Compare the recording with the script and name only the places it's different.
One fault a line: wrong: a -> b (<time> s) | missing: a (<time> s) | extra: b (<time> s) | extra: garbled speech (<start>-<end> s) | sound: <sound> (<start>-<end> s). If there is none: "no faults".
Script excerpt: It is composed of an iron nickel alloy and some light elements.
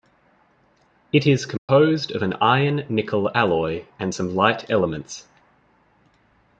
sound: dropout (1.6-1.7 s)